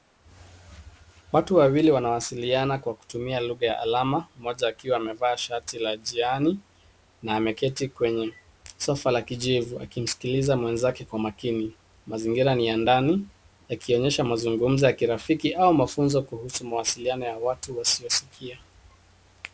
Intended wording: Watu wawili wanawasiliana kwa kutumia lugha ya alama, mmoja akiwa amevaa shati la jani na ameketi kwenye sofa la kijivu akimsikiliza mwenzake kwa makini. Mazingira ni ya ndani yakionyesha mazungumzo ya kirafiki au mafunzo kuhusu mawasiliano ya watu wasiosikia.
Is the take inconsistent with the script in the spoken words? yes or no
no